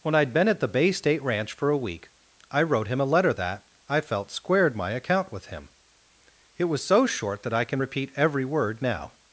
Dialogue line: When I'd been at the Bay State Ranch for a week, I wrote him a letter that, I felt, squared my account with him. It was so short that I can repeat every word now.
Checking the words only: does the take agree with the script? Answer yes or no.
yes